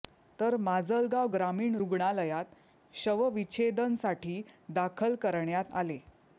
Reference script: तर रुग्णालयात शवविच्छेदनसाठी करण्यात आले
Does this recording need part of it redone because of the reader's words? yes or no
yes